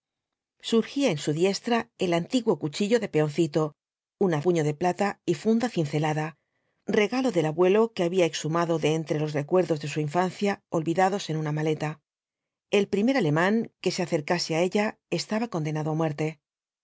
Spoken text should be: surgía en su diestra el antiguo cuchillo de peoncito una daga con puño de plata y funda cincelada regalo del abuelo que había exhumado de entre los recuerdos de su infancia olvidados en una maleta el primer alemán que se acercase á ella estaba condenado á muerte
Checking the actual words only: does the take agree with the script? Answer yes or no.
no